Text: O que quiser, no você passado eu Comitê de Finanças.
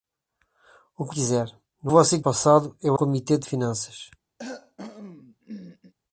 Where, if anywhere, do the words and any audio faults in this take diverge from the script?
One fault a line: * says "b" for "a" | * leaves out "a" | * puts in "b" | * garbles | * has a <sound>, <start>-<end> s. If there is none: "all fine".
* has a cough, 4.4-5.9 s